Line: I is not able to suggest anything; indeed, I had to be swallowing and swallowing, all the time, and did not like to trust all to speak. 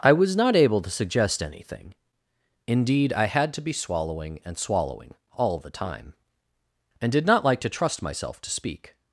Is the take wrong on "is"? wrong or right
wrong